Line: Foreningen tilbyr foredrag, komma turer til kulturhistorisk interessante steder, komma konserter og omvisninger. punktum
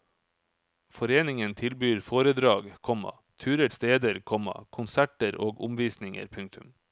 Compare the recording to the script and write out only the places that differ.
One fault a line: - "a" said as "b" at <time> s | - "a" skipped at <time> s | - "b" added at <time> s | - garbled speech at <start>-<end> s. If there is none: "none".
- "til kulturhistorisk interessante" skipped at 3.7 s